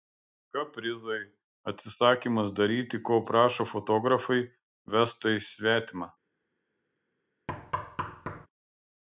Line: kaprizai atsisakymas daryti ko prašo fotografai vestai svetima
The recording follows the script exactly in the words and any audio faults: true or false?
false